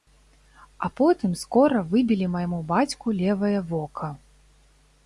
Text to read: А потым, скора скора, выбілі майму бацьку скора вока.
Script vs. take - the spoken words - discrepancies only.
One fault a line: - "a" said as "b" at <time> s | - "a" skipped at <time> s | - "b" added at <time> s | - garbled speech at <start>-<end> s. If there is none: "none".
- "скора" skipped at 1.8 s
- "скора" said as "левае" at 3.2 s